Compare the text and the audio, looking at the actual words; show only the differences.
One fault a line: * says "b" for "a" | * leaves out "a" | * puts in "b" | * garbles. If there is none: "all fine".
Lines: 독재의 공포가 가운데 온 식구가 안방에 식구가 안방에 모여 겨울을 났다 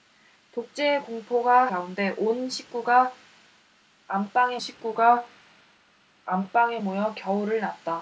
all fine